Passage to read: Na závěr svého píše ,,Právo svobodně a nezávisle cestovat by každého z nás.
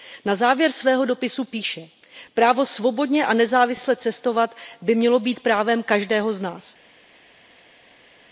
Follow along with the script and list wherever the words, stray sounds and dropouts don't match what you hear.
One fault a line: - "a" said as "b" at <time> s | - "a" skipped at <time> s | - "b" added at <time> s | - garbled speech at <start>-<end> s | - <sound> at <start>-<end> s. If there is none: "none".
- "dopisu" added at 1.1 s
- "mělo být právem" added at 5.0 s